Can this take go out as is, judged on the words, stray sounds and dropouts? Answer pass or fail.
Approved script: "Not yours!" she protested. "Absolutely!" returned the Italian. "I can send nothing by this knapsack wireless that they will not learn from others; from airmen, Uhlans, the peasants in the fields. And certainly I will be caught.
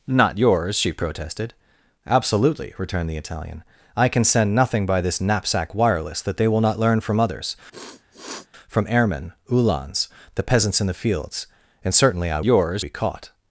fail